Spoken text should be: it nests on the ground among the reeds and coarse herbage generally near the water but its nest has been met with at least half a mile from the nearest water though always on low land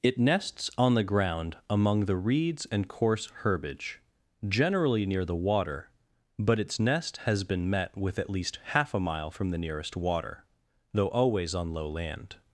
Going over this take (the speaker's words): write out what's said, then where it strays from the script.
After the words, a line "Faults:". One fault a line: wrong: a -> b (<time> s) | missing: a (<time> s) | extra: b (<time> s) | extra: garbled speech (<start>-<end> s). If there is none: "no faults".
it nests on the ground among the reeds and coarse herbage generally near the water but its nest has been met with at least half a mile from the nearest water though always on low land
Faults:
no faults